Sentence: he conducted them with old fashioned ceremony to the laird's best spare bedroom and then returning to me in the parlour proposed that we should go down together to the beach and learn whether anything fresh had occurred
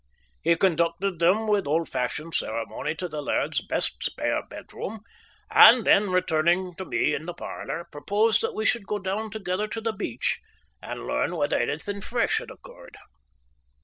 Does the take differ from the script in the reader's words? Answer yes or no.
no